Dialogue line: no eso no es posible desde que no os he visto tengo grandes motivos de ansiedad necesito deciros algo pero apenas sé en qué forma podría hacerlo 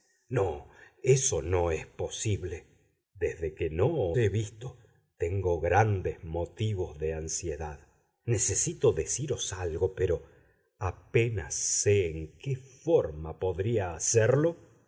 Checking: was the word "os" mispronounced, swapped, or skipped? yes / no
yes